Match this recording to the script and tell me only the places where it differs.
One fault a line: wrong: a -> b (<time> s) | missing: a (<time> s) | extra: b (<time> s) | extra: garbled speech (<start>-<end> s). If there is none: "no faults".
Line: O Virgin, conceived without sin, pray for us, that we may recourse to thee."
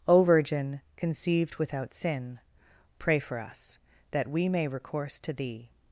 no faults